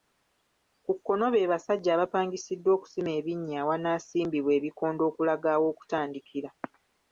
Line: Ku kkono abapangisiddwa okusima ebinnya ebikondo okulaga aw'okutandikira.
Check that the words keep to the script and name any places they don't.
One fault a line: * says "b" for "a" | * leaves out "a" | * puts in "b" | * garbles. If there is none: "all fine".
* puts in "be basajja"
* puts in "awanaasimbibwa"